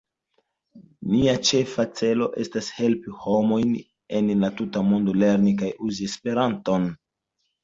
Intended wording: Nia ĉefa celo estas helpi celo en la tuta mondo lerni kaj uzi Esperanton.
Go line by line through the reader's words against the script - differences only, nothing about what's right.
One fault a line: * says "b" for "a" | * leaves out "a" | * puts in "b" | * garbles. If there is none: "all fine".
* says "homojn" for "celo"